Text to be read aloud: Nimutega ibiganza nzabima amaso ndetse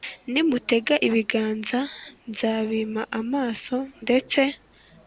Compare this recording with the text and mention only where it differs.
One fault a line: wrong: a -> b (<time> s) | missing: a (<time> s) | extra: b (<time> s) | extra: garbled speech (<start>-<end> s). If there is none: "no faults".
no faults